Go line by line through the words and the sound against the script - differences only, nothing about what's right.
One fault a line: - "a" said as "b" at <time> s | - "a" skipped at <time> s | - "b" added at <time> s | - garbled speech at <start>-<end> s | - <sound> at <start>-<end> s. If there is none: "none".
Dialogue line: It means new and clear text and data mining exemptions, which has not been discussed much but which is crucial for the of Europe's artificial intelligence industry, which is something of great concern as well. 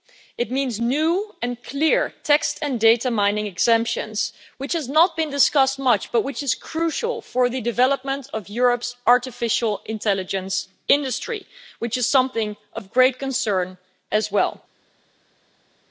- "development" added at 7.6 s